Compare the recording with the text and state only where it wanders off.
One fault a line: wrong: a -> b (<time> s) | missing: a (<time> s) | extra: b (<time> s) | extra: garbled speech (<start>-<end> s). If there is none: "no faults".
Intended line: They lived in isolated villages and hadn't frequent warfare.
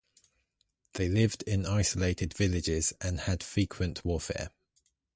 wrong: hadn't -> had (3.2 s)